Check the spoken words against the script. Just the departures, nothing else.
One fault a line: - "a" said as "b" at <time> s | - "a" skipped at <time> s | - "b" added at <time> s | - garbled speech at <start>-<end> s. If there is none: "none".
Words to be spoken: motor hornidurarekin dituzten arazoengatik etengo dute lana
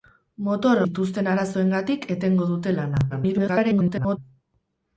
- "hornidurarekin" skipped at 0.8 s
- garbled speech at 3.1-4.2 s